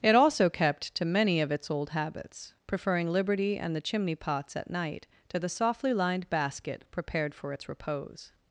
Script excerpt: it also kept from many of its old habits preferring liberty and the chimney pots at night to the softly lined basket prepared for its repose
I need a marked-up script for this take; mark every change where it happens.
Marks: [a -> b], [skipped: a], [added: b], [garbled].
it also kept [from -> to] many of its old habits preferring liberty and the chimney pots at night to the softly lined basket prepared for its repose